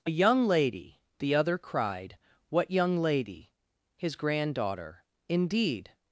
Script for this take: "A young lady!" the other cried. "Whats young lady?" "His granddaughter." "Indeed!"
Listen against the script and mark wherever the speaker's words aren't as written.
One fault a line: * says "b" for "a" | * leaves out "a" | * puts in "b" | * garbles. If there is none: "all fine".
* says "What" for "Whats"